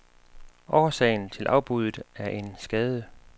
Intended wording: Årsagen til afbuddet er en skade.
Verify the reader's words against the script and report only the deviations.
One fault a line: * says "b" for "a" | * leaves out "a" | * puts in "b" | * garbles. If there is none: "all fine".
all fine